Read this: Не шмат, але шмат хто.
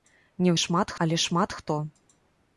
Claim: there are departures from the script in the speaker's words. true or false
false